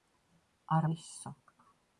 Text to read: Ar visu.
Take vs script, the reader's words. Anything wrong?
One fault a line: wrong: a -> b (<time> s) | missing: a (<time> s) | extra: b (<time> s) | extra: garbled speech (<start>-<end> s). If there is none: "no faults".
no faults